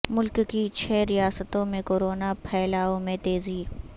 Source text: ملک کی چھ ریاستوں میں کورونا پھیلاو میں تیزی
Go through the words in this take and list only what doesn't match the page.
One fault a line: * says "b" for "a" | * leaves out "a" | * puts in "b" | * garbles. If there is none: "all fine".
all fine